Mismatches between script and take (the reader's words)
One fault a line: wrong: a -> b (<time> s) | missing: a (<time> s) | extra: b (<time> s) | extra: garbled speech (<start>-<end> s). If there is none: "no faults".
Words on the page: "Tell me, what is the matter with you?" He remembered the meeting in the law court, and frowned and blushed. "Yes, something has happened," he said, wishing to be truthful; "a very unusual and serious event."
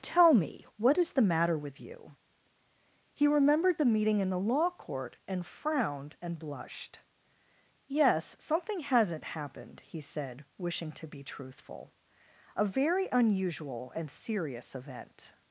wrong: has -> hasn't (8.8 s)